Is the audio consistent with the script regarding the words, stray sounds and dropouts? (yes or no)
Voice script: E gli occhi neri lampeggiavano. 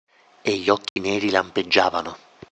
no